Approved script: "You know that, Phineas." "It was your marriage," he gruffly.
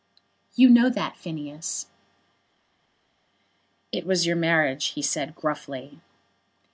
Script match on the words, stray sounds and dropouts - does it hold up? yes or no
no